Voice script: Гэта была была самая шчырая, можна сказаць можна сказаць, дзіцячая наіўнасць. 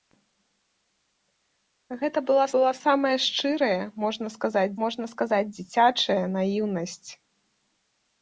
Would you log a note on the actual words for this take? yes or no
no